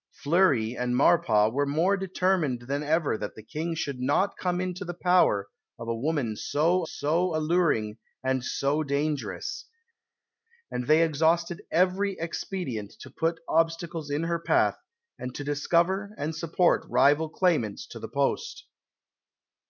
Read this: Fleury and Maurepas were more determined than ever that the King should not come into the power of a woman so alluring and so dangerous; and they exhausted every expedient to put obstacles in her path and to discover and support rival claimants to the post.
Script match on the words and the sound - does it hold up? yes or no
no